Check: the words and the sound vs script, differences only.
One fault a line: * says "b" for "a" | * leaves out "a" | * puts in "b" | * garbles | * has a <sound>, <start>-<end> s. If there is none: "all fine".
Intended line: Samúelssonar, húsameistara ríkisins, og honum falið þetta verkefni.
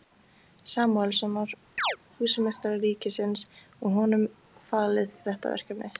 * has a chirp, 1.8-2.0 s